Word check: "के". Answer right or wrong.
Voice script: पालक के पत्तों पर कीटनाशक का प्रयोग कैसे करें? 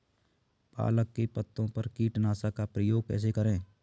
right